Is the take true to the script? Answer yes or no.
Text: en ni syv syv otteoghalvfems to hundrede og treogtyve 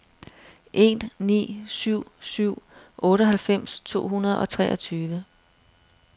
yes